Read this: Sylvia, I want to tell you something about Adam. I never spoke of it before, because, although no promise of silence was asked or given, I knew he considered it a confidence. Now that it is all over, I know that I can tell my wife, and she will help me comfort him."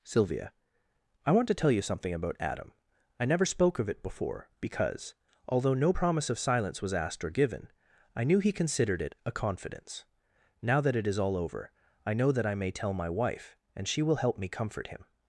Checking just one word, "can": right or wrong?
wrong